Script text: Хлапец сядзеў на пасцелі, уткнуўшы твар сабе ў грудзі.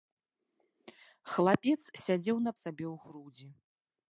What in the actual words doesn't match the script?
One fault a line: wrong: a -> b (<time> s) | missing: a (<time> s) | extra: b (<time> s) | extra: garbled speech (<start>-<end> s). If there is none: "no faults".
missing: пасцелі уткнуўшы твар (2.5 s)